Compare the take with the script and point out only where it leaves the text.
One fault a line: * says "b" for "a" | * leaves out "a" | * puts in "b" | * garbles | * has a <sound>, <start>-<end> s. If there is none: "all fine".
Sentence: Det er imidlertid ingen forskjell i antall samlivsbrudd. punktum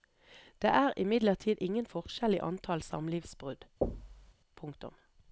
* has a thud, 3.8-4.3 s